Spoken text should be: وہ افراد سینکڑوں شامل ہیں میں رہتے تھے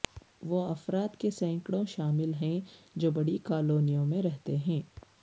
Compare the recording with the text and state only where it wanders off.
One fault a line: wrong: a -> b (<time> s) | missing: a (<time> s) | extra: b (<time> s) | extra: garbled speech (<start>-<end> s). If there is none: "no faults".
extra: کے (1.1 s)
extra: جو بڑی کالونیوں (3.0 s)
wrong: تھے -> ہیں (4.6 s)